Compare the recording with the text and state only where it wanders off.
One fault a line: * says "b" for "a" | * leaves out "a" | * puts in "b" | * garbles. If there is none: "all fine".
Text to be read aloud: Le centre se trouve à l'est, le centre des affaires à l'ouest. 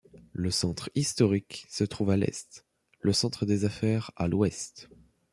* puts in "historique"